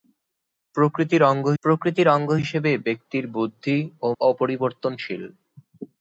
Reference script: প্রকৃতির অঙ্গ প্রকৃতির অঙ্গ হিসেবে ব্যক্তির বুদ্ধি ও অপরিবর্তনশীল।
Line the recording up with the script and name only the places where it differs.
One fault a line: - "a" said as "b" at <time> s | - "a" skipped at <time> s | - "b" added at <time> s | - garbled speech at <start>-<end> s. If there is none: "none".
none